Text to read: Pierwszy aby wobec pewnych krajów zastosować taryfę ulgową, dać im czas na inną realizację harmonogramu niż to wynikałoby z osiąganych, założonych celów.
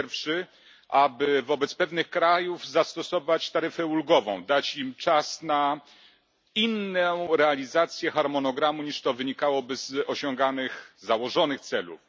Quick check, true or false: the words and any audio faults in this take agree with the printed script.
true